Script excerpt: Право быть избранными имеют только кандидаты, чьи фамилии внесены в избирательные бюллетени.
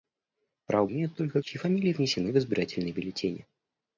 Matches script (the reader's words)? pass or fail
fail